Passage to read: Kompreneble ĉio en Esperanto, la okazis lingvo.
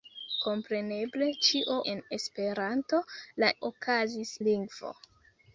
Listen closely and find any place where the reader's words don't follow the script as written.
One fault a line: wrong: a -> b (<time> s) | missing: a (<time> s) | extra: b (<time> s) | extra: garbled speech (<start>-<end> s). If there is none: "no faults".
no faults